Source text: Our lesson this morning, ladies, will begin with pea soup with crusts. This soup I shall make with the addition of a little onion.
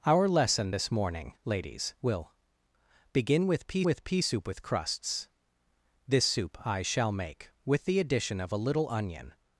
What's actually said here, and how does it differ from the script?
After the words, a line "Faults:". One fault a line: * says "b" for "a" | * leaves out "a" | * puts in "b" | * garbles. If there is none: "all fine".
Our lesson this morning, ladies, will begin with pea with pea soup with crusts. This soup I shall make with the addition of a little onion.
Faults:
* puts in "with pea"